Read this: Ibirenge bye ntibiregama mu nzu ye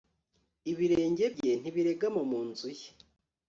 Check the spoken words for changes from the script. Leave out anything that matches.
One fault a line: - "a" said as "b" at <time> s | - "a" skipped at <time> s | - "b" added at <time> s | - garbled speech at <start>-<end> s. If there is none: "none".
none